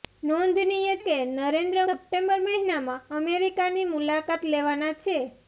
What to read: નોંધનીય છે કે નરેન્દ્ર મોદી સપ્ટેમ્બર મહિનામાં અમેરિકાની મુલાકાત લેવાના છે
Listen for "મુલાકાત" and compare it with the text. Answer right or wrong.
right